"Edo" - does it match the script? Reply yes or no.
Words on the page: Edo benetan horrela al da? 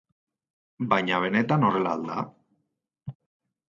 no